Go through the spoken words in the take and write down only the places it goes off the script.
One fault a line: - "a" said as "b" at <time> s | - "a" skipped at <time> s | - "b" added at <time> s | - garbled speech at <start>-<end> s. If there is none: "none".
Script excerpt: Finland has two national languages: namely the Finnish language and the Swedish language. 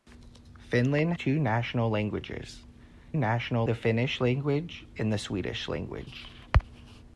- "has" skipped at 1.1 s
- "namely" said as "national" at 3.2 s